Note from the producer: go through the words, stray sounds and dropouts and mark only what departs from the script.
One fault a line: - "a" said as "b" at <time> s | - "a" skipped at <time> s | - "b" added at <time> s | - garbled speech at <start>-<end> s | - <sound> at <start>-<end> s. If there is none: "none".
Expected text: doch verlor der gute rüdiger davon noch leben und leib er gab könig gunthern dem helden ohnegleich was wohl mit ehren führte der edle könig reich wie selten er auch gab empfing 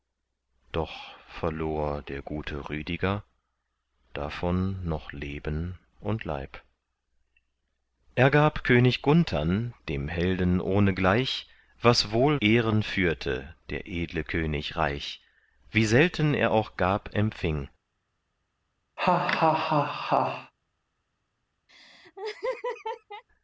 - "mit" skipped at 12.4 s
- laugh at 19.0-20.5 s
- laugh at 21.7-23.2 s